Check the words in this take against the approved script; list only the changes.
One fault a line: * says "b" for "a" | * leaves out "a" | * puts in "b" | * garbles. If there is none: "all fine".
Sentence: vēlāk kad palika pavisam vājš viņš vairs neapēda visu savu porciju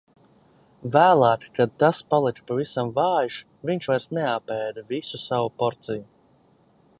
* puts in "tas"